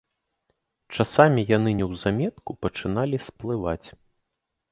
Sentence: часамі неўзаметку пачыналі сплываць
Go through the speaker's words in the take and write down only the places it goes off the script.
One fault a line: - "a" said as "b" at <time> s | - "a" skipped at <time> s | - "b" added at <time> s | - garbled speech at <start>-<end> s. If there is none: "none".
- "яны" added at 1.6 s